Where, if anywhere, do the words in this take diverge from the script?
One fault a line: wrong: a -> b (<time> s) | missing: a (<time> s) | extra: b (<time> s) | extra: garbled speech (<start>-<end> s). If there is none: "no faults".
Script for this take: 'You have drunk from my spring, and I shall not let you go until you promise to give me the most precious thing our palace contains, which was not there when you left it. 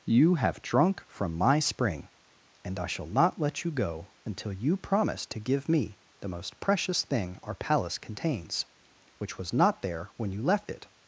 no faults